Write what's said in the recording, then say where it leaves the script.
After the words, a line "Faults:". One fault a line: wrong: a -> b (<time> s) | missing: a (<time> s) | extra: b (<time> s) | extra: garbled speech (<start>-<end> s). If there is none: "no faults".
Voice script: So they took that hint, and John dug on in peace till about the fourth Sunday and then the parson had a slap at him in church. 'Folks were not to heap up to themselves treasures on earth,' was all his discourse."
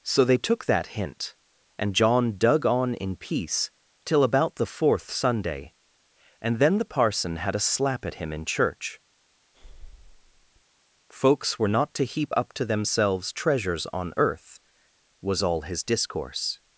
So they took that hint, and John dug on in peace till about the fourth Sunday and then the parson had a slap at him in church. 'Folks were not to heap up to themselves treasures on earth,' was all his discourse."
Faults:
no faults